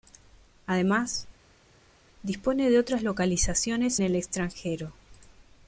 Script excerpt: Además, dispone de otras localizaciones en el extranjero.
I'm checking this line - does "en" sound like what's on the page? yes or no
no